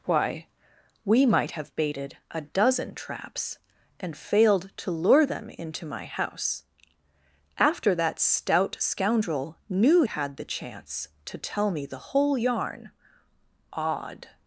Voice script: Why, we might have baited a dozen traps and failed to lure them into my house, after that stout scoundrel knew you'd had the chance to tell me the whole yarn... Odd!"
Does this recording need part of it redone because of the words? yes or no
yes